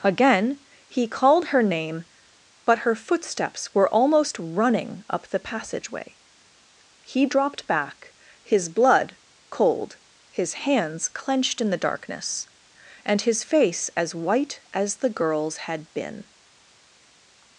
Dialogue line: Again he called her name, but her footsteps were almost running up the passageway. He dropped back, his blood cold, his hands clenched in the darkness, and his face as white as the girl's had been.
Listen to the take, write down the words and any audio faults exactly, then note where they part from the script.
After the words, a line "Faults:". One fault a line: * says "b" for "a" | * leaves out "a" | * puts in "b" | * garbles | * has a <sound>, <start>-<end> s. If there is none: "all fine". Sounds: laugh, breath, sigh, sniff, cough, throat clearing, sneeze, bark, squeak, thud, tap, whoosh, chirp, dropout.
Again he called her name, but her footsteps were almost running up the passageway. He dropped back, his blood cold, his hands clenched in the darkness, and his face as white as the girl's had been.
Faults:
all fine